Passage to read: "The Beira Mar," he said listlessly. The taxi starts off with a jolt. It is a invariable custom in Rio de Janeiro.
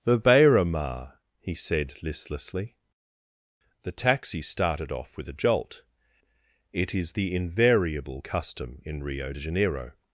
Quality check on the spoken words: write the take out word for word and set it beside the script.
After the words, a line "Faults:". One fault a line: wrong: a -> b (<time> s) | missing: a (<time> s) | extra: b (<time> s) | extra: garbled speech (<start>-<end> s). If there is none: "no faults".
"The Beira Mar," he said listlessly. The taxi started off with a jolt. It is the invariable custom in Rio de Janeiro.
Faults:
wrong: starts -> started (4.4 s)
wrong: a -> the (7.1 s)